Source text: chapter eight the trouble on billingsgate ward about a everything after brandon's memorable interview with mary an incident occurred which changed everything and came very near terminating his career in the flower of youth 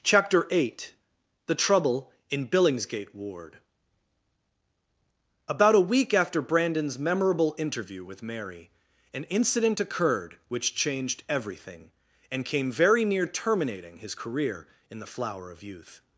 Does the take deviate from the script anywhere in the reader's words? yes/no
yes